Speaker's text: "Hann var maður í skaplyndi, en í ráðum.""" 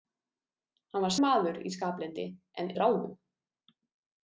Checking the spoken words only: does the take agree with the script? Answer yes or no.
yes